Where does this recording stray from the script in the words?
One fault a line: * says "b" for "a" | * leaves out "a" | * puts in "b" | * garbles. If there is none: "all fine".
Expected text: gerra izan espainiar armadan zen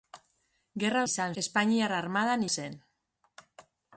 all fine